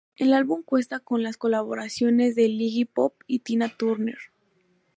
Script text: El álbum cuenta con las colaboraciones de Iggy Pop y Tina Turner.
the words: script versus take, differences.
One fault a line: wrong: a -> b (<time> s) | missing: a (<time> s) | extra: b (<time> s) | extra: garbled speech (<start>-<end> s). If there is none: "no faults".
no faults